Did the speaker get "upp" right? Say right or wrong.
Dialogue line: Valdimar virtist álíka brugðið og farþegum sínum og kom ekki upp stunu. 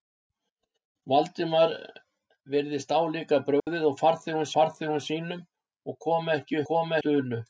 wrong